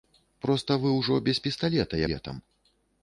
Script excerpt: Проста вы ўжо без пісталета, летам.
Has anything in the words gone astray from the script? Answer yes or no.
no